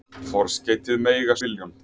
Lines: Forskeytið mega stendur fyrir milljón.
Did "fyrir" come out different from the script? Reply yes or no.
yes